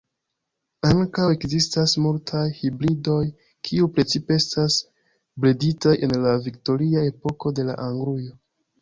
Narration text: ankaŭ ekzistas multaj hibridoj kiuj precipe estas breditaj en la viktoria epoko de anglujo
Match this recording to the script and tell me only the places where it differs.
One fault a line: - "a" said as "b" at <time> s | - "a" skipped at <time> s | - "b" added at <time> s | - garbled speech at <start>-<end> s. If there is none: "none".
none